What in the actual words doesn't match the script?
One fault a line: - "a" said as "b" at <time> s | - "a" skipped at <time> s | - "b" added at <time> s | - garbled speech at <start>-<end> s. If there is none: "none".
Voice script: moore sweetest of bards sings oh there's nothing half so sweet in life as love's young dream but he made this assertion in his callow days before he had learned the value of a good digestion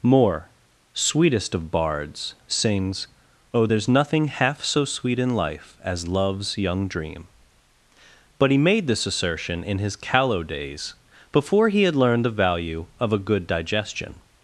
none